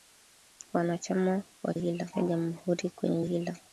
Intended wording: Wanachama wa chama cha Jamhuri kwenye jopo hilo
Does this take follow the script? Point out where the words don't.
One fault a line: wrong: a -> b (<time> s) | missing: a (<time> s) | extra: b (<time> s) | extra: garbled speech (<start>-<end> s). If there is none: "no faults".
wrong: chama -> hilo (1.7 s)
missing: jopo (3.2 s)